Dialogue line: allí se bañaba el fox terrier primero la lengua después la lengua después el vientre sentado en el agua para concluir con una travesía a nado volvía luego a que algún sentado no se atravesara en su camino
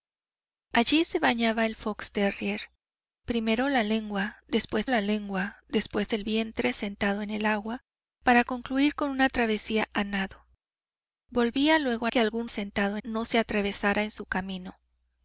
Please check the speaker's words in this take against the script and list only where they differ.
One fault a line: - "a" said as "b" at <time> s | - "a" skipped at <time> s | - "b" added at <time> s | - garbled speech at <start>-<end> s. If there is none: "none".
none